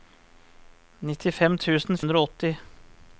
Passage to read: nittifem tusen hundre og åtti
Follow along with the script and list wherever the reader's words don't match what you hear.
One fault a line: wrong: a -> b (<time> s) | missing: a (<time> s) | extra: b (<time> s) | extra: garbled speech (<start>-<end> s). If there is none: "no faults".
no faults